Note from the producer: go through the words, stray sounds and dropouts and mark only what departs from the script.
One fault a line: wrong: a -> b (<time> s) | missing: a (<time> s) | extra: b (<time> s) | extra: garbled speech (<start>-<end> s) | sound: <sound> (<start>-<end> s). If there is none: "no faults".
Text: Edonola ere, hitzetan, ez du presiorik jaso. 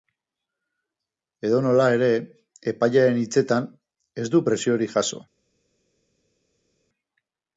extra: epailearen (2.7 s)